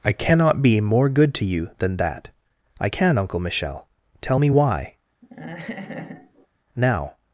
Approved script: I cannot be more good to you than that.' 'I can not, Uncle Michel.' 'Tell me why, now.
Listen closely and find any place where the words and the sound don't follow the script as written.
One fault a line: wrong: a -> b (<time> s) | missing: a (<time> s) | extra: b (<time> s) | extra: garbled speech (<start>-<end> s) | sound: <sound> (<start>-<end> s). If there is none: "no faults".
missing: not (3.2 s)
sound: laugh (5.2-6.5 s)